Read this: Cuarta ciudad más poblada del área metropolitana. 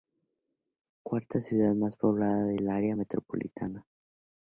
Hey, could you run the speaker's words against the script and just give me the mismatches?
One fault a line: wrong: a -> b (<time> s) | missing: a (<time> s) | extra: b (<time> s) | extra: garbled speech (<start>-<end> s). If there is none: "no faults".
no faults